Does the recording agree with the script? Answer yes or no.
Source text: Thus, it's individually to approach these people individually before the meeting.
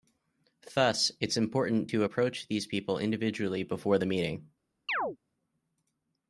no